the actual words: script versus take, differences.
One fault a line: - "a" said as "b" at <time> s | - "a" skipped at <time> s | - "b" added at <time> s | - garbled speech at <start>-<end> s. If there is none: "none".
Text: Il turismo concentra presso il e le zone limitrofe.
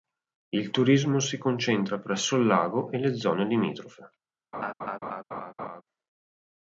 - "si" added at 1.2 s
- "lago" added at 2.5 s